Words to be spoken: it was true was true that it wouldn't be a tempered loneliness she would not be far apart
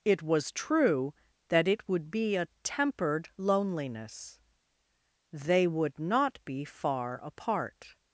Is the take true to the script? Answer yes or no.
no